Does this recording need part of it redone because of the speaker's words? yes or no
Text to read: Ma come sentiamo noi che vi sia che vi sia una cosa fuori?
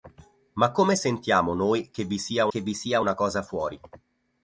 no